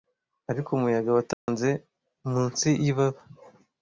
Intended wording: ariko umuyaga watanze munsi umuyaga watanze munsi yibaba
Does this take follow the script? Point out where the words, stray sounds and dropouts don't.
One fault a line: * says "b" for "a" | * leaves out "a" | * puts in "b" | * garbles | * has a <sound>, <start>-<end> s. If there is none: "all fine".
* has a dropout, 1.3-1.5 s
* leaves out "umuyaga watanze munsi"